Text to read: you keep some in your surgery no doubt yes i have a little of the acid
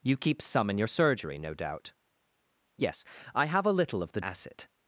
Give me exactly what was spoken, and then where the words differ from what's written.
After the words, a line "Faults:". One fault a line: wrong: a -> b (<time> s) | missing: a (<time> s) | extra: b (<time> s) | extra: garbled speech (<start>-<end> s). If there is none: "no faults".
you keep some in your surgery no doubt yes i have a little of the acid
Faults:
no faults